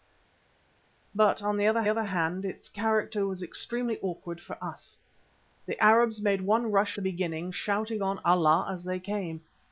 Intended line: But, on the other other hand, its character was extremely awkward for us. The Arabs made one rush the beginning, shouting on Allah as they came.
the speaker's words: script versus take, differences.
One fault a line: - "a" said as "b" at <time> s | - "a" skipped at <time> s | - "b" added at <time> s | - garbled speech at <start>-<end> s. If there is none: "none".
none